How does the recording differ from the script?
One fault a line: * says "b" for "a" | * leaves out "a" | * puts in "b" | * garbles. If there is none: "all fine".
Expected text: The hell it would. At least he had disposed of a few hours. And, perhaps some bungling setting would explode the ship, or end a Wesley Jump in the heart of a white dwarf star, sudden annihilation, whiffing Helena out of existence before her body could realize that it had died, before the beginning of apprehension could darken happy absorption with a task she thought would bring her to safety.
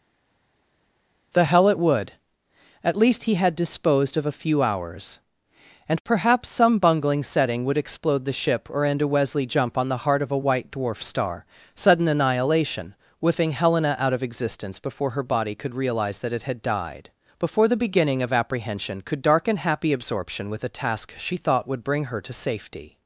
* says "on" for "in"